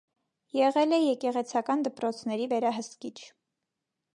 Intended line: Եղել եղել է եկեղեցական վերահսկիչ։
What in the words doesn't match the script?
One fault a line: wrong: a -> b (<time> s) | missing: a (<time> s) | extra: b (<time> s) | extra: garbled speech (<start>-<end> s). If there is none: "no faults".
missing: եղել (0.9 s)
extra: դպրոցների (1.9 s)